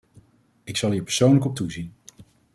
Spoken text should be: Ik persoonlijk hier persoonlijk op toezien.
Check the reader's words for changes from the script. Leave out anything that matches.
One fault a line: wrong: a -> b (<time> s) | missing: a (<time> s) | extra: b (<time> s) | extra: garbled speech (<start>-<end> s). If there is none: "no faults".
wrong: persoonlijk -> zal (0.8 s)